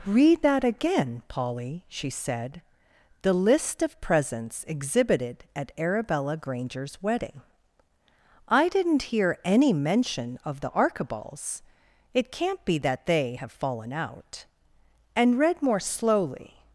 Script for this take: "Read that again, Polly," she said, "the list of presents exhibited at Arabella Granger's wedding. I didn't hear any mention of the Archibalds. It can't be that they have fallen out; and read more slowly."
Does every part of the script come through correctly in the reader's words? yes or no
yes